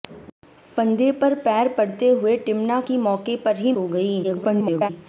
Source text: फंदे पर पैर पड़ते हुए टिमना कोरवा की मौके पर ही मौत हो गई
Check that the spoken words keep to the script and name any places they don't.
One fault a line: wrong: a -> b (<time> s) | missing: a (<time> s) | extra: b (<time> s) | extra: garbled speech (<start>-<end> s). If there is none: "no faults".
missing: कोरवा (2.8 s)
missing: मौत (3.7 s)
extra: garbled speech (4.2-4.9 s)